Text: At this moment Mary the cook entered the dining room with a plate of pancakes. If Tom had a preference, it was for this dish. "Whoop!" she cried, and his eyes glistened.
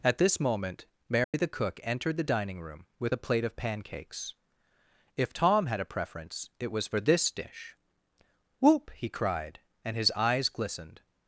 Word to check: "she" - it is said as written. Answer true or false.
false